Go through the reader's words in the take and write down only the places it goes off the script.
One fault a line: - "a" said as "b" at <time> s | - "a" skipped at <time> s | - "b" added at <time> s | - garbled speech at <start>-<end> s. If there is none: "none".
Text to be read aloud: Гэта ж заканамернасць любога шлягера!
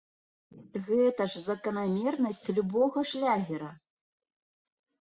none